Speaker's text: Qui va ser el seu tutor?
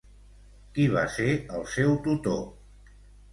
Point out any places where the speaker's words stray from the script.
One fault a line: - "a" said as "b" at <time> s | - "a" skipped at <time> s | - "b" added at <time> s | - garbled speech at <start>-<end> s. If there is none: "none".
none